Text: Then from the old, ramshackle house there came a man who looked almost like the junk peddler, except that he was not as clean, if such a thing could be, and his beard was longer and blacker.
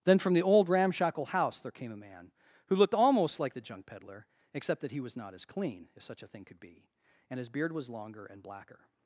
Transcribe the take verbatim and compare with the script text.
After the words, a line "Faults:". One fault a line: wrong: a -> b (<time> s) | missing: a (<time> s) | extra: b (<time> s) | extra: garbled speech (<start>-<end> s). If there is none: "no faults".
Then from the old, ramshackle house there came a man who looked almost like the junk peddler, except that he was not as clean, if such a thing could be, and his beard was longer and blacker.
Faults:
no faults